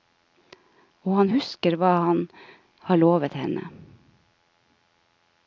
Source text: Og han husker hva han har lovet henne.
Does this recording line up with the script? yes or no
yes